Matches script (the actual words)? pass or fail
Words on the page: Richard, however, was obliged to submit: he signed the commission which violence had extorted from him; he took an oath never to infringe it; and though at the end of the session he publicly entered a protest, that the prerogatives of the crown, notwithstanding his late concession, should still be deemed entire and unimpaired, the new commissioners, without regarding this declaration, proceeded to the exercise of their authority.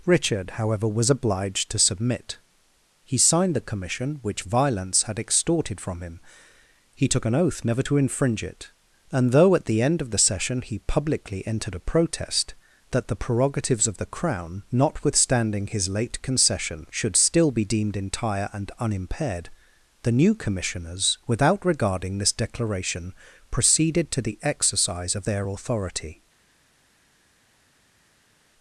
pass